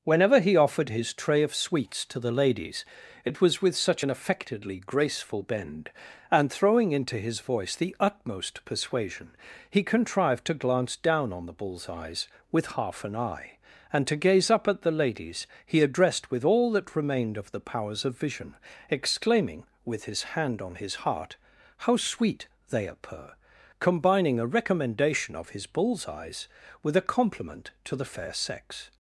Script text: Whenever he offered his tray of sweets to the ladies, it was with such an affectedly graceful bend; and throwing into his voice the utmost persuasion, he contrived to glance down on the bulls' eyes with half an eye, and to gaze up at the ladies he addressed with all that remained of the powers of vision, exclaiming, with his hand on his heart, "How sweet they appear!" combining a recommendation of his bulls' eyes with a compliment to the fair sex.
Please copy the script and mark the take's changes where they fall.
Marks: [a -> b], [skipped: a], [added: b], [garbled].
Whenever he offered his tray of sweets to the ladies, it was with such an affectedly graceful bend; and throwing into his voice the utmost persuasion, he contrived to glance down on the bulls' eyes with half an eye, and to gaze up at the ladies he addressed with all that remained of the powers of vision, exclaiming, with his hand on his heart, "How sweet they appear!" combining a recommendation of his bulls' eyes with a compliment to the fair sex.